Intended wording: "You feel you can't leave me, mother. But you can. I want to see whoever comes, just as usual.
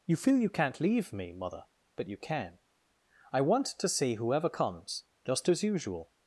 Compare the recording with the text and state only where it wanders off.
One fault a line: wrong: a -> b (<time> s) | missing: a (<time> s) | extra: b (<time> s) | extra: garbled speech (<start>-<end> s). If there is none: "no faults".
no faults